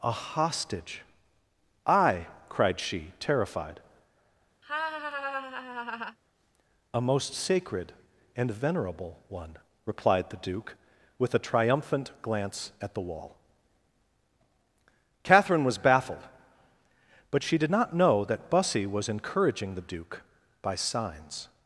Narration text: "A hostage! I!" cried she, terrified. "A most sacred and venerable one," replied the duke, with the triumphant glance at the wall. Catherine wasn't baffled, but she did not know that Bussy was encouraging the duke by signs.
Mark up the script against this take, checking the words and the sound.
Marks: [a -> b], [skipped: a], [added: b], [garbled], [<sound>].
"A hostage! I!" cried she, terrified. [laugh] "A most sacred and venerable one," replied the duke, with [the -> a] triumphant glance at the wall. Catherine [wasn't -> was] baffled, but she did not know that Bussy was encouraging the duke by signs.